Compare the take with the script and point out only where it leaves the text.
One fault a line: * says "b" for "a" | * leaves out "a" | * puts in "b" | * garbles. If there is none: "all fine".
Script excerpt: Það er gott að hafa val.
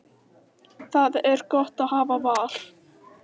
all fine